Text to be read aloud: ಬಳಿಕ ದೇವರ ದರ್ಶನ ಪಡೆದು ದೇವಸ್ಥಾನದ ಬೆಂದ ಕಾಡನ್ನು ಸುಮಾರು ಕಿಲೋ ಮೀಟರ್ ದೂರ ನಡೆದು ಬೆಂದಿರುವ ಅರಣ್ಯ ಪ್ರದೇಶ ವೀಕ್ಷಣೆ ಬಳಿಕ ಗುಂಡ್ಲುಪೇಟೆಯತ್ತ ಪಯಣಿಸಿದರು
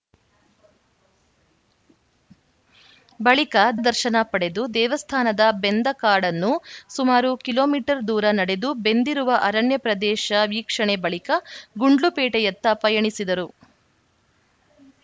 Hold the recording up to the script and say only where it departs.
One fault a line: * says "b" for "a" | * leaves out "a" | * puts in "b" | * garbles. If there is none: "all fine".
* leaves out "ದೇವರ"